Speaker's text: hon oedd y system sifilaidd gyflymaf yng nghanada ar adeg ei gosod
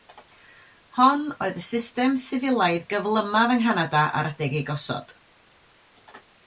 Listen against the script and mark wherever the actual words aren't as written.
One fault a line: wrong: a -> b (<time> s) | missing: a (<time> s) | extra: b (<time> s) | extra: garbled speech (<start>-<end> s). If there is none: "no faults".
no faults